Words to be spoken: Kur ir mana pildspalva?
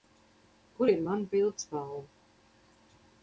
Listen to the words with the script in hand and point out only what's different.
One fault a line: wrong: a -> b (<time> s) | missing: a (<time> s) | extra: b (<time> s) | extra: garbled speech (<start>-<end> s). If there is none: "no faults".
no faults